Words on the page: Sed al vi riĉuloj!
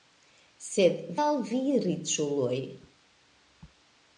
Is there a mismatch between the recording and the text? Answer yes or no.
no